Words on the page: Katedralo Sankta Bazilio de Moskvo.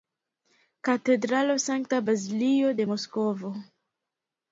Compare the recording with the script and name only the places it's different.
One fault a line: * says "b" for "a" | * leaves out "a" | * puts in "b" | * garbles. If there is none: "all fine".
all fine